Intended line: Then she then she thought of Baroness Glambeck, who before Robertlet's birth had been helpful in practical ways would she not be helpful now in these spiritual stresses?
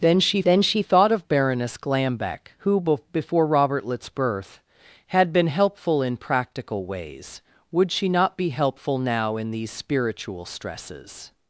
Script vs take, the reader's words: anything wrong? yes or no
no